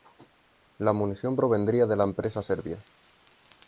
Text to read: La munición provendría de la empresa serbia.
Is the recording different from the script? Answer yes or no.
no